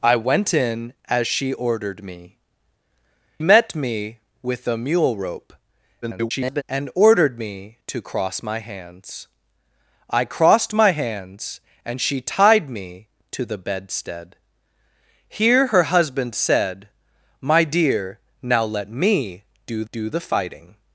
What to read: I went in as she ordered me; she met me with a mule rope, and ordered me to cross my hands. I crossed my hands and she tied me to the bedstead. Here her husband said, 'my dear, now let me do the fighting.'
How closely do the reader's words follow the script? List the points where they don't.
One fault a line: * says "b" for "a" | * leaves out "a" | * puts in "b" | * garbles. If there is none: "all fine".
* leaves out "she"
* garbles
* puts in "do"